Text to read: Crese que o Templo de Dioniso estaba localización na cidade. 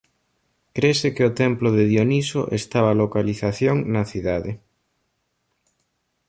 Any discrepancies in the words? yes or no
no